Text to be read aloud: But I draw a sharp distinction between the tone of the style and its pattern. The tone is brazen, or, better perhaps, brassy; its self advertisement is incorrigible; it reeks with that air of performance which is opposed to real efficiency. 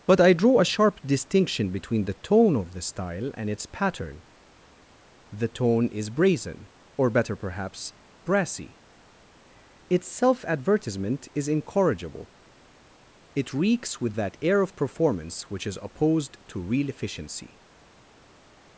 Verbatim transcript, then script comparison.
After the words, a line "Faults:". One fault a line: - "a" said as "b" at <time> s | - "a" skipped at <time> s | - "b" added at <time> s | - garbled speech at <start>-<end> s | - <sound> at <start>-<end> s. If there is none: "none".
But I draw a sharp distinction between the tone of the style and its pattern. The tone is brazen, or, better perhaps, brassy; its self advertisement is incorrigible; it reeks with that air of performance which is opposed to real efficiency.
Faults:
none